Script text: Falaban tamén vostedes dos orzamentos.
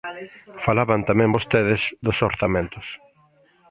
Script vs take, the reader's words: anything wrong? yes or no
no